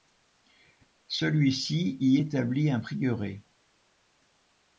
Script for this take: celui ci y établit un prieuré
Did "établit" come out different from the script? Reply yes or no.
no